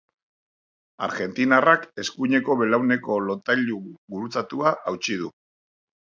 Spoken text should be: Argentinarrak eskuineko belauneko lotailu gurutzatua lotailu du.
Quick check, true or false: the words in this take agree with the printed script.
false